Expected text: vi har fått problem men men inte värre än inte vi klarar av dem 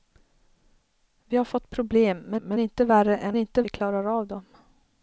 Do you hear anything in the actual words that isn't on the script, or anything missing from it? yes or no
no